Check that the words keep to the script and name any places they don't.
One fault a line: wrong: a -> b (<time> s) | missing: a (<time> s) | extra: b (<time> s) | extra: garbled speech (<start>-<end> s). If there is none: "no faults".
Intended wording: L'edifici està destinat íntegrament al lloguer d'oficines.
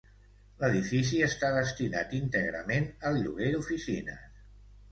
no faults